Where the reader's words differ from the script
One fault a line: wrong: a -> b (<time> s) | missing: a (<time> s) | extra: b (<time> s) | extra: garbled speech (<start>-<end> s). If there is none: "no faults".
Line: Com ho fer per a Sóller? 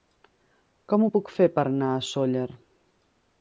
extra: puc (1.2 s)
extra: anar (1.7 s)